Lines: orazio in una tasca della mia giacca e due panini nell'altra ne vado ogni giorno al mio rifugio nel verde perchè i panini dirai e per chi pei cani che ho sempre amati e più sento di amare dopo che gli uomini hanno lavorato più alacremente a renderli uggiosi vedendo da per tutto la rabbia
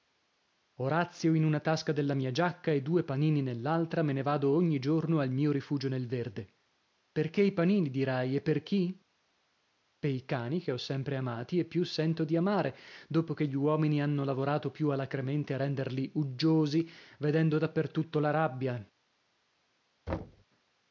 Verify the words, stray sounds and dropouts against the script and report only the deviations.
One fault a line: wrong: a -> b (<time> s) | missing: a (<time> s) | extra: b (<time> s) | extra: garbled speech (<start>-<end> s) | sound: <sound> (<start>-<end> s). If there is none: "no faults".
extra: me (4.0 s)
sound: thud (20.1-20.4 s)